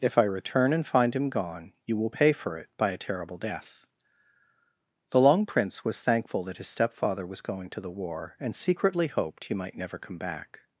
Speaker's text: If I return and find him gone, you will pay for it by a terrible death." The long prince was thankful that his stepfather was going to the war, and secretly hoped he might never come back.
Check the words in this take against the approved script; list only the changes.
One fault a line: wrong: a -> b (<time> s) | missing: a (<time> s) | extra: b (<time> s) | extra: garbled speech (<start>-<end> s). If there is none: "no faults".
no faults